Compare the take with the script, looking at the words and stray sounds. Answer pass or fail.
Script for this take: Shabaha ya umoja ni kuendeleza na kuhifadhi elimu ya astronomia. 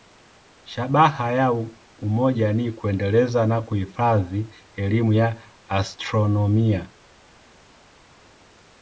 pass